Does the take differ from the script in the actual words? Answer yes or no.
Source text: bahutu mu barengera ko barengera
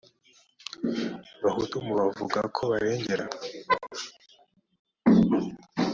yes